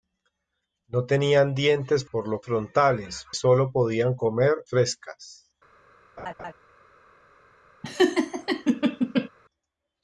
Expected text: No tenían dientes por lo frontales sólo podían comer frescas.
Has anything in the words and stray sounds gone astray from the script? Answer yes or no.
yes